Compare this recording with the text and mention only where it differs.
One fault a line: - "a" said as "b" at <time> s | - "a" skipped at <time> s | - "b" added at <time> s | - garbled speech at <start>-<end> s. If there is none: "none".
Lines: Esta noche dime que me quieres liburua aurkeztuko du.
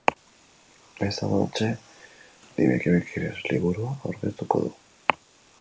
none